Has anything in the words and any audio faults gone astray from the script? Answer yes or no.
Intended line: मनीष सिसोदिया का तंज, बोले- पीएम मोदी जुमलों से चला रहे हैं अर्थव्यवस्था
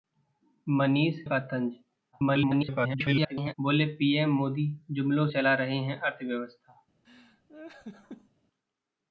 yes